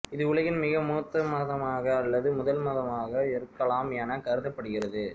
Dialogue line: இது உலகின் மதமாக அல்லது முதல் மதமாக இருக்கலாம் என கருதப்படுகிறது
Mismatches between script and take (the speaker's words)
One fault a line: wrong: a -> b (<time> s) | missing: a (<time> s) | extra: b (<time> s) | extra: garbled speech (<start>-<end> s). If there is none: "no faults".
extra: மிக மூத்த (0.6 s)